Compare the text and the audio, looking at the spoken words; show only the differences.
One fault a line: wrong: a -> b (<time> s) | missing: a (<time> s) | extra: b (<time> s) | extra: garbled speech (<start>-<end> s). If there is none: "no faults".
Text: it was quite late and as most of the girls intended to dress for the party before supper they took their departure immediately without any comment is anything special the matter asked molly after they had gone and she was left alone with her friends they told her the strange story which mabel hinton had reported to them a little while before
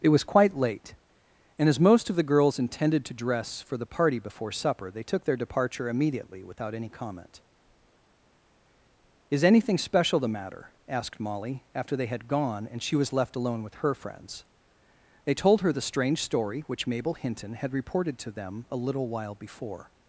no faults